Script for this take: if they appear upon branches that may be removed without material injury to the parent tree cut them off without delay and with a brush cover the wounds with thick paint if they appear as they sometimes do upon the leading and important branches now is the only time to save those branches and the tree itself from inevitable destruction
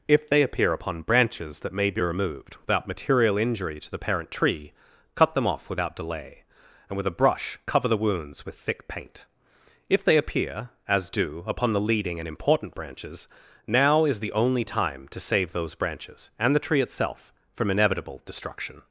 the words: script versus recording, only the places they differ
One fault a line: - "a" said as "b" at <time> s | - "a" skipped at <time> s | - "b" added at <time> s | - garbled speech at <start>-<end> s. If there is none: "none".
- "they sometimes" skipped at 11.1 s